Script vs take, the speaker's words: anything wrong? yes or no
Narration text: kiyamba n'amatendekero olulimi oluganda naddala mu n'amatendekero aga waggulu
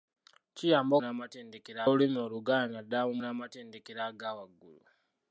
no